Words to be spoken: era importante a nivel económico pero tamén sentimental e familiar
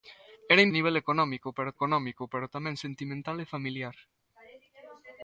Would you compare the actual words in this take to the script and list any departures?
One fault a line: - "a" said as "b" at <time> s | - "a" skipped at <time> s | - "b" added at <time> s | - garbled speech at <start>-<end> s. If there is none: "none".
- "importante" skipped at 0.7 s
- "económico pero" added at 1.8 s